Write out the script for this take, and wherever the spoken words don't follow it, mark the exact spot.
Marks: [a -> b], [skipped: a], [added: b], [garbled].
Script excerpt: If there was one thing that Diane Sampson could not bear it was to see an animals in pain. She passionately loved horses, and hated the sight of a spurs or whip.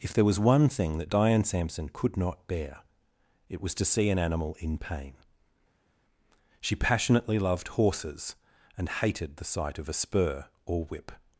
If there was one thing that Diane Sampson could not bear it was to see an [animals -> animal] in pain. She passionately loved horses, and hated the sight of a [spurs -> spur] or whip.